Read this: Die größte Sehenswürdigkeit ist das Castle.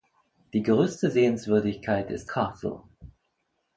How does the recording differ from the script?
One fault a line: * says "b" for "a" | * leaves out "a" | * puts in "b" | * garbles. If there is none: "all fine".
* leaves out "das"